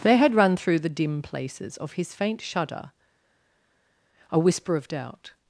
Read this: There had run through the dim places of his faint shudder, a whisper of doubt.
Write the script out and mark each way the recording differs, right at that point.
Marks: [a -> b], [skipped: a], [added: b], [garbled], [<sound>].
There had run through the dim places of his faint shudder, a whisper of doubt.